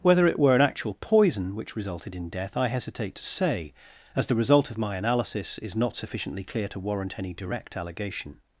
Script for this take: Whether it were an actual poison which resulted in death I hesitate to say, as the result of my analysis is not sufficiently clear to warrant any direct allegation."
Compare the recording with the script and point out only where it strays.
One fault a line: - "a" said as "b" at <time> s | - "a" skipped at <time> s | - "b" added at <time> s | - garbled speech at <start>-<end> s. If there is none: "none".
none